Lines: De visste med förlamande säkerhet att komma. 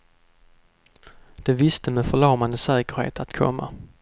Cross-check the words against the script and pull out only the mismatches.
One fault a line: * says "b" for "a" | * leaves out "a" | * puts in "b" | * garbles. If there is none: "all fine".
all fine